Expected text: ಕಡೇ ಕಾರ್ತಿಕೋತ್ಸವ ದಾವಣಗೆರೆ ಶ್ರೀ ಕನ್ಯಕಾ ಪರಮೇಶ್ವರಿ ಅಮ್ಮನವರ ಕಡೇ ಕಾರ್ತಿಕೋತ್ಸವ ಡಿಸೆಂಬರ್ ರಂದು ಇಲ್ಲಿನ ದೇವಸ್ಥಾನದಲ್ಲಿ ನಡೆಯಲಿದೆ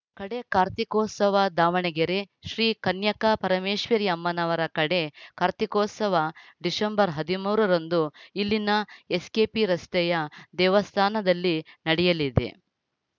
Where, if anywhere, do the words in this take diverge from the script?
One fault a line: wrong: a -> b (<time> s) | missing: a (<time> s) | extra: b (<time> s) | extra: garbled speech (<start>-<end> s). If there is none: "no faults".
extra: ಹದಿಮೂರ (7.2 s)
extra: ಎಸ್‌ಕೆಪಿ ರಸ್ತೆಯ (9.2 s)